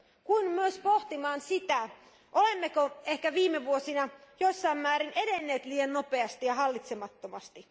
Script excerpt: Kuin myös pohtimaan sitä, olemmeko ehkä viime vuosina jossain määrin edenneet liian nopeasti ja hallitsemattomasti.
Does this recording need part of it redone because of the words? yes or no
no